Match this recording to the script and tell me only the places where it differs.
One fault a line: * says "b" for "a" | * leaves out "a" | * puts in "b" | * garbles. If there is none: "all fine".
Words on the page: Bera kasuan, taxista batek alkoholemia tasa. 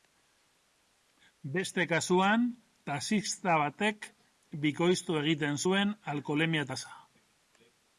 * says "Beste" for "Bera"
* puts in "bikoiztu egiten zuen"